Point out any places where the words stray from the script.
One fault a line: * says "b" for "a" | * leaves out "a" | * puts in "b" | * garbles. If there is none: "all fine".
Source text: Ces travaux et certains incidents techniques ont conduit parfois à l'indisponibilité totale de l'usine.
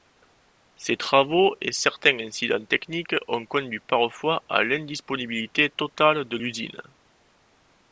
all fine